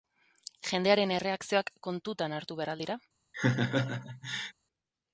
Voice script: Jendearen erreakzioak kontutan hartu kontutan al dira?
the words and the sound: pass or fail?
fail